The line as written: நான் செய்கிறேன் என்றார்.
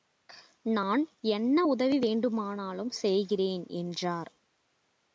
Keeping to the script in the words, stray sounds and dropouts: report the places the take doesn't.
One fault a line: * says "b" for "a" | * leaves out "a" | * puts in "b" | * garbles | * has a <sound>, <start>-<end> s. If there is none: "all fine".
* puts in "என்ன உதவி வேண்டுமானாலும்"